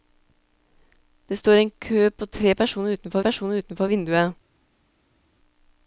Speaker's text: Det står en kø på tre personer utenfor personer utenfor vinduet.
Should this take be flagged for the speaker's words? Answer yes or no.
no